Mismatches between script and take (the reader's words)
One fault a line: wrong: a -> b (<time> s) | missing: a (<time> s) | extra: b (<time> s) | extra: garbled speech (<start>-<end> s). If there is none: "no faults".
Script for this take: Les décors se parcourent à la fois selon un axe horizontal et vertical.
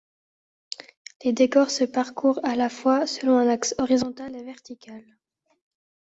no faults